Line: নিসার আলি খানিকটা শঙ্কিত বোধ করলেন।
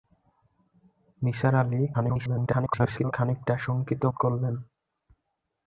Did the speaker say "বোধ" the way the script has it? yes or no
no